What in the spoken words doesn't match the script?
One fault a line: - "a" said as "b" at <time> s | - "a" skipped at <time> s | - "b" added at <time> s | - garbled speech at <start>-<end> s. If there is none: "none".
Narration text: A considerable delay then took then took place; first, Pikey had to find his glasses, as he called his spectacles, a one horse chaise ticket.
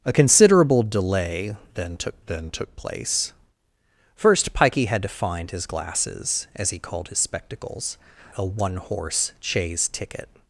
none